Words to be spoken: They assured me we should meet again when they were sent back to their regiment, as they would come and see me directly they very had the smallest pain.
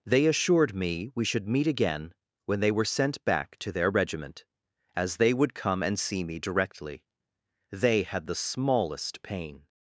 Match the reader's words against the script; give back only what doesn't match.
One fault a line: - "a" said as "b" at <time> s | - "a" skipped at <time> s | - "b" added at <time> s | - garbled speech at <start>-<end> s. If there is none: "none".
- "very" skipped at 8.0 s